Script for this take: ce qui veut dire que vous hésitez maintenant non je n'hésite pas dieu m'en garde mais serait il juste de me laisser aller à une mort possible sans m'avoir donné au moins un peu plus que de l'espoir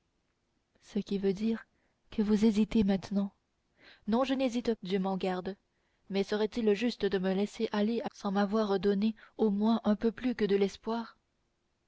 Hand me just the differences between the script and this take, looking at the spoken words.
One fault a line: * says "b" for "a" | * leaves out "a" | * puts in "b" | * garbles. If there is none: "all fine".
* leaves out "pas"
* leaves out "une mort possible"